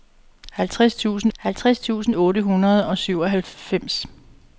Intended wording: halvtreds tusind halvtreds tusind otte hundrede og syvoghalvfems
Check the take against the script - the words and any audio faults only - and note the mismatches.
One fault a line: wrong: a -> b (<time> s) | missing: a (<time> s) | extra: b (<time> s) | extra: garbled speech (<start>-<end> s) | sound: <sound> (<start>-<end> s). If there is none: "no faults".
no faults